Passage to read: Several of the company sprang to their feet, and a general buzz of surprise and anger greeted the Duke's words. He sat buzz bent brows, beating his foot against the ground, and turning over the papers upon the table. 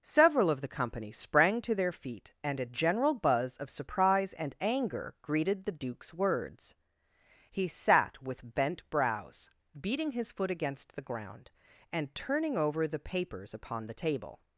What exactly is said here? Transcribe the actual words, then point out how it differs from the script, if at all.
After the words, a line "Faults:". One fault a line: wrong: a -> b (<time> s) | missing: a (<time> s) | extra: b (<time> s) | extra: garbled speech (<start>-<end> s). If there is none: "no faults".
Several of the company sprang to their feet, and a general buzz of surprise and anger greeted the Duke's words. He sat with bent brows, beating his foot against the ground, and turning over the papers upon the table.
Faults:
wrong: buzz -> with (8.2 s)